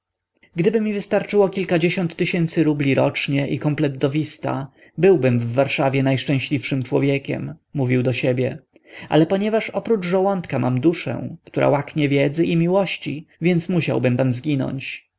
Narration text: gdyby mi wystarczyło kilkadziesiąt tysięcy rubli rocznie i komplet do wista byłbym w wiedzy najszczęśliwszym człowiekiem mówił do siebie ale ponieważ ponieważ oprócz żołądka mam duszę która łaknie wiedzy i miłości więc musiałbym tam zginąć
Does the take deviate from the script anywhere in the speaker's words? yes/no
yes